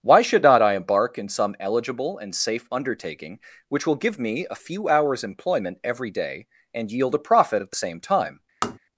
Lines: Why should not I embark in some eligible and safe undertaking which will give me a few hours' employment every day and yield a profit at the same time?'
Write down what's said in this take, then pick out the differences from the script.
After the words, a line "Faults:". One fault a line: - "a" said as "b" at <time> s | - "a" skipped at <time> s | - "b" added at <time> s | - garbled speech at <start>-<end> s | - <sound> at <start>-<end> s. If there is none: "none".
Why should not I embark in some eligible and safe undertaking which will give me a few hours' employment every day and yield a profit at the same time?'
Faults:
- tap at 8.6-8.8 s